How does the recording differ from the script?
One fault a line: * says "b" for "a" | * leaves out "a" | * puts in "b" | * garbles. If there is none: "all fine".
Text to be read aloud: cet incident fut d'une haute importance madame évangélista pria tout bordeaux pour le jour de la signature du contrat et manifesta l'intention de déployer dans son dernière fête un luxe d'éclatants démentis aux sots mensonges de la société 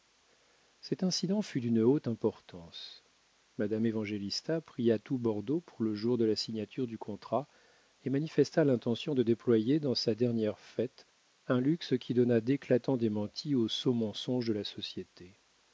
* says "sa" for "son"
* puts in "qui donnât"